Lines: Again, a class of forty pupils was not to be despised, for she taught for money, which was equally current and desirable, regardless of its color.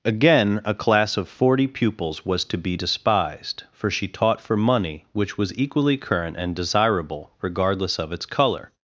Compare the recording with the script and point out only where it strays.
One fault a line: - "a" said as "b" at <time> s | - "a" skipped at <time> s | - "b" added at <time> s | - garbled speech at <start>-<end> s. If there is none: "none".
- "not" skipped at 2.4 s